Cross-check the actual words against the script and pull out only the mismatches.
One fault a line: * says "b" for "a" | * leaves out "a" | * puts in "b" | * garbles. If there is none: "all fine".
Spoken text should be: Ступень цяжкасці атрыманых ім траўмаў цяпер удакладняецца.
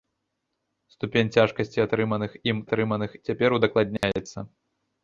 * says "атрыманых" for "траўмаў"